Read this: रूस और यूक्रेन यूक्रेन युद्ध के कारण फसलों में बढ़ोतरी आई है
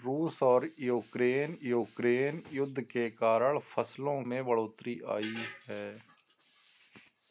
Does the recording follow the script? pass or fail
pass